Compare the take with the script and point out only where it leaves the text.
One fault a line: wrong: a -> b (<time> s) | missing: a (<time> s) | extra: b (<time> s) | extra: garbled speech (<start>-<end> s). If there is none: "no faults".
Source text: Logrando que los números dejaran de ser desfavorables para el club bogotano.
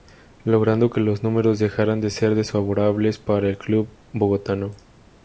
no faults